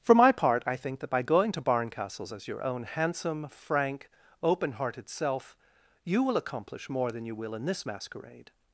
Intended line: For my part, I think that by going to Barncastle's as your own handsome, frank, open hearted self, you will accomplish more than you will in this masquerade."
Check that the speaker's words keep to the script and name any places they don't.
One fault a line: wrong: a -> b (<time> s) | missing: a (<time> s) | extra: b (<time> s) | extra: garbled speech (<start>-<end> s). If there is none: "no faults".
no faults